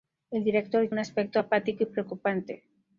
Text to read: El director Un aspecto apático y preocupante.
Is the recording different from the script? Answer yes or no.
no